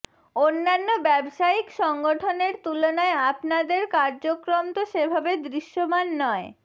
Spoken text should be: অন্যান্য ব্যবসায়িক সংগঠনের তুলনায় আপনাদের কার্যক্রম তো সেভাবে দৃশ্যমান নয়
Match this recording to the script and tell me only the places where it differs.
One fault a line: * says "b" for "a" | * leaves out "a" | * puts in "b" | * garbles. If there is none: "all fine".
all fine